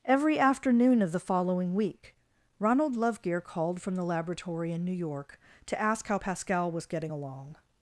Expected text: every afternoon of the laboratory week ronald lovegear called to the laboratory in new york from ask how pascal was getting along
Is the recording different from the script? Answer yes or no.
yes